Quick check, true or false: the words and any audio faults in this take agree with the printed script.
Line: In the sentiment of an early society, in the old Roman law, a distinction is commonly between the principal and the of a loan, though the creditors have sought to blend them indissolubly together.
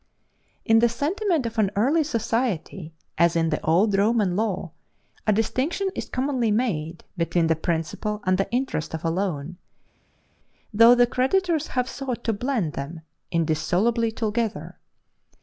false